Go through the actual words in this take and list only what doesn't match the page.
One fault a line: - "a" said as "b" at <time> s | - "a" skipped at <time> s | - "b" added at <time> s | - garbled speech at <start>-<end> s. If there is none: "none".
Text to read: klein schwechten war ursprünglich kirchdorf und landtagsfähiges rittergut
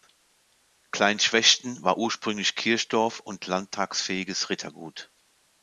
none